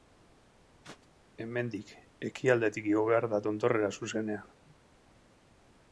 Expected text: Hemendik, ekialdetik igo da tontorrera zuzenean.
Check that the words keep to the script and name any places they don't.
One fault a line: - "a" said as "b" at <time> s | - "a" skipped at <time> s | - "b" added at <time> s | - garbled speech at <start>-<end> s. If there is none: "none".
- "behar" added at 3.1 s